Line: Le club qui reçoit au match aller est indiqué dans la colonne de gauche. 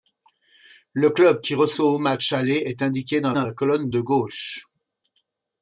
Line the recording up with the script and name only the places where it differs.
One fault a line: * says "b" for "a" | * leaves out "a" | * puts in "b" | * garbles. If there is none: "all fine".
* puts in "dans"